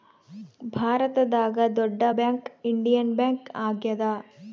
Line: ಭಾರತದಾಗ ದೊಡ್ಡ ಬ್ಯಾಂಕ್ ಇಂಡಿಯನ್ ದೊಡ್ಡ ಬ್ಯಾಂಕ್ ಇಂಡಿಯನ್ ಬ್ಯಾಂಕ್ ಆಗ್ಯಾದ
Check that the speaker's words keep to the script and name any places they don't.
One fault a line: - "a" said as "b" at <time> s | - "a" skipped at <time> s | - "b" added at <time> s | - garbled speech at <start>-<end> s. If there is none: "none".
- "ದೊಡ್ಡ ಬ್ಯಾಂಕ್ ಇಂಡಿಯನ್" skipped at 3.1 s